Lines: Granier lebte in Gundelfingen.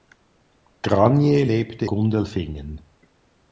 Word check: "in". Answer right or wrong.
wrong